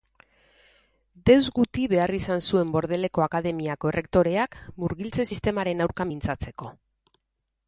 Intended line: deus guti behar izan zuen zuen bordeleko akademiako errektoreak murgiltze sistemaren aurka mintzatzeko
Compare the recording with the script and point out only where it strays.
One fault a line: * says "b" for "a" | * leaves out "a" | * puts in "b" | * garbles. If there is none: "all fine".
* leaves out "zuen"